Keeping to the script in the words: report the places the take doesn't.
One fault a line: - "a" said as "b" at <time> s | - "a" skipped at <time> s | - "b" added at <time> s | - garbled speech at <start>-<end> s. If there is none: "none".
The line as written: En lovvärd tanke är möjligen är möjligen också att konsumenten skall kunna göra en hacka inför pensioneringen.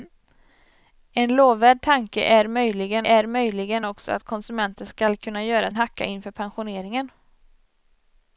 none